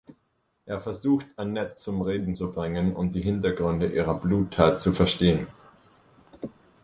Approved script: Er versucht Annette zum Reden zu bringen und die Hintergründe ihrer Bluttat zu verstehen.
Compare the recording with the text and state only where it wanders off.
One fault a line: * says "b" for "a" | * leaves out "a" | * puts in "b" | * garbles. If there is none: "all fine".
all fine